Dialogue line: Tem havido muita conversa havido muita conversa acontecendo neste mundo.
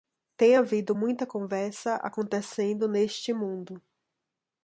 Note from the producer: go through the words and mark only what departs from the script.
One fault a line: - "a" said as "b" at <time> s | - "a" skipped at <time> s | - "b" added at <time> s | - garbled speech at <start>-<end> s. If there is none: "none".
- "havido muita conversa" skipped at 2.0 s